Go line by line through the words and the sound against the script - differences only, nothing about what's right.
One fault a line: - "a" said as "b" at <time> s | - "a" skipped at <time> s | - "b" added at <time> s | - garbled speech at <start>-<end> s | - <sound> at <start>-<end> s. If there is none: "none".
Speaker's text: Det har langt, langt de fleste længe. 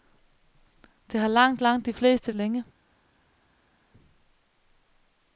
none